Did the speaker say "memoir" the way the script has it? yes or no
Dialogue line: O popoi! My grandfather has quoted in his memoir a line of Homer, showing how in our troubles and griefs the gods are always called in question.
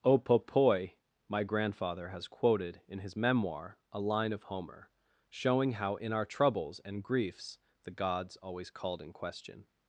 yes